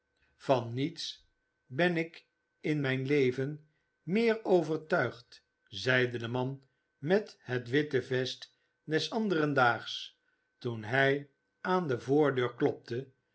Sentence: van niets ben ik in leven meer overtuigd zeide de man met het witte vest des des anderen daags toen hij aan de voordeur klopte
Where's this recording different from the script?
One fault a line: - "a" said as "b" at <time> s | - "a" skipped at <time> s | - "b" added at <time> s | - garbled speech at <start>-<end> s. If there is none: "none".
- "mijn" added at 2.8 s
- "des" skipped at 9.1 s